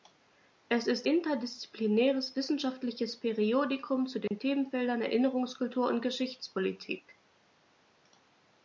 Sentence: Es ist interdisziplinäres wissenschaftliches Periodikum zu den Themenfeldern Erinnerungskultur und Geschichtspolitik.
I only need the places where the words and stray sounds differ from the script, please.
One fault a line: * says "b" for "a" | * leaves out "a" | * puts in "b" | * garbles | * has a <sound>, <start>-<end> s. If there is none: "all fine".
* has a dropout, 4.3-4.3 s